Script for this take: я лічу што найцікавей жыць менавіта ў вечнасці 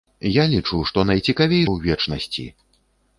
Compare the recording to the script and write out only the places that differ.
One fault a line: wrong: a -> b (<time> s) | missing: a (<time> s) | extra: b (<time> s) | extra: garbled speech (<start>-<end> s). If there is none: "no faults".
missing: жыць менавіта (1.6 s)